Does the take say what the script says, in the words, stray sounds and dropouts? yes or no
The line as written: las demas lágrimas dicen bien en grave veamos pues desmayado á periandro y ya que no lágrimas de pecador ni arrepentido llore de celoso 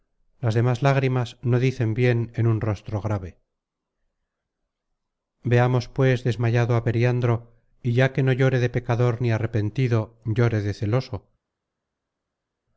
no